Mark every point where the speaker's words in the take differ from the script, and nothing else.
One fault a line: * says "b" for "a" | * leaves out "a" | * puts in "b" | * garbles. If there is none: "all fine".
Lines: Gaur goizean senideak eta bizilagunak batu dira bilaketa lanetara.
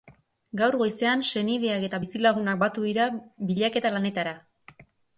all fine